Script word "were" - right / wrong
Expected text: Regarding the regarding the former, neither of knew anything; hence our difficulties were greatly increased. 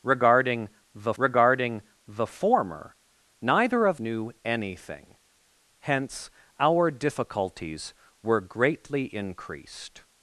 right